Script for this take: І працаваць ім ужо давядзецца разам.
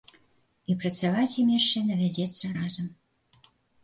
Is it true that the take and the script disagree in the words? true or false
true